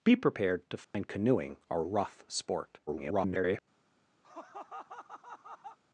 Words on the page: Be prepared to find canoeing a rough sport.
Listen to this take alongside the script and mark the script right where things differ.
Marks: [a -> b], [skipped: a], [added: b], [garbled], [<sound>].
Be prepared to find [dropout] canoeing a rough sport. [garbled] [laugh]